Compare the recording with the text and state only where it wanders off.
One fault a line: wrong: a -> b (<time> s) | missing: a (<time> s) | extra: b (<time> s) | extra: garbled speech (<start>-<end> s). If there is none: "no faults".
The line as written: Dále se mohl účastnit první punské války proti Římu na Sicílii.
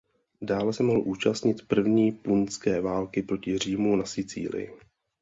no faults